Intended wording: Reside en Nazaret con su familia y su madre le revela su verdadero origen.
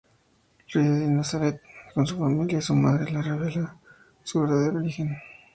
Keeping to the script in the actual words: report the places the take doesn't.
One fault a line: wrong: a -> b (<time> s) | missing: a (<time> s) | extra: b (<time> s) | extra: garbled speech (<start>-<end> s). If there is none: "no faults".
no faults